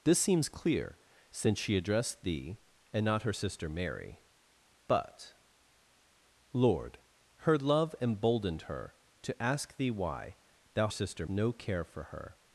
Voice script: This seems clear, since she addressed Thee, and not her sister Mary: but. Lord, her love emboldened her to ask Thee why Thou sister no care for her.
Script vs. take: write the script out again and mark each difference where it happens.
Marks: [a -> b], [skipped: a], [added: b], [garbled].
This seems clear, since she addressed Thee, and not her sister Mary: but. Lord, her love emboldened her to ask Thee why Thou sister no care for her.